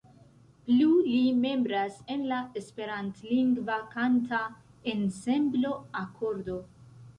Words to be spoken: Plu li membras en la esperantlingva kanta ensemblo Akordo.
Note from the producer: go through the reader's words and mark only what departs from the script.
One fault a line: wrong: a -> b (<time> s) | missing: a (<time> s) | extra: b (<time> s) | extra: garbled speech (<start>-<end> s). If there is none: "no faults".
no faults